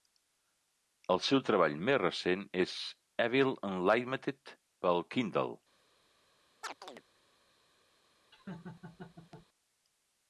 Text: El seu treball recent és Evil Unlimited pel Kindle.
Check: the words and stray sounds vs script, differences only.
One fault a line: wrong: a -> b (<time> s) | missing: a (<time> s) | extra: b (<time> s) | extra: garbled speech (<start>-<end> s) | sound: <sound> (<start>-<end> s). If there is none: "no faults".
extra: més (1.9 s)
sound: chirp (6.6-7.0 s)
sound: laugh (8.3-9.5 s)